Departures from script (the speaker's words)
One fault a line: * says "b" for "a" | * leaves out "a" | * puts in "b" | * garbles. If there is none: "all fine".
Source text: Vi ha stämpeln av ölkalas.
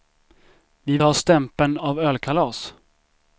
all fine